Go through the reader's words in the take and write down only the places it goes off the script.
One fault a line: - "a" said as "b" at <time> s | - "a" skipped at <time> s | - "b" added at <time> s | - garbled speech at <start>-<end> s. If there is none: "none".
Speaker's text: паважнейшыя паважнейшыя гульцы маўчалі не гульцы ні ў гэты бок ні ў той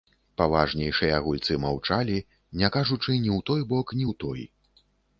- "паважнейшыя" skipped at 1.2 s
- "гульцы" said as "кажучы" at 2.8 s
- "гэты" said as "той" at 3.5 s